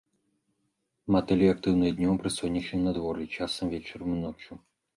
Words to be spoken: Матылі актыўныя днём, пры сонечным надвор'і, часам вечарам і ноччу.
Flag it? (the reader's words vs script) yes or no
no